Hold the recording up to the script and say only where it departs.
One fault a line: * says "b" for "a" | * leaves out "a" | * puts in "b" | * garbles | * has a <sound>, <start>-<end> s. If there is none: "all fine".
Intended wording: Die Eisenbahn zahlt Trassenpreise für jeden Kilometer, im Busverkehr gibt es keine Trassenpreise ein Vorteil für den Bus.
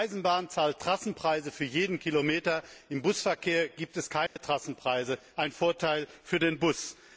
* has a dropout, 4.3-4.4 s